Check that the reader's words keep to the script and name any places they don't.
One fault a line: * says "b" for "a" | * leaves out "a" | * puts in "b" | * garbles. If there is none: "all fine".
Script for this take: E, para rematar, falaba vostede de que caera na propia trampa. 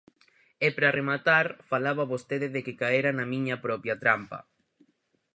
* puts in "miña"